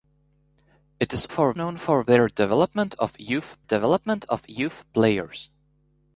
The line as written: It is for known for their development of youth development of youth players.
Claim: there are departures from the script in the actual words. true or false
false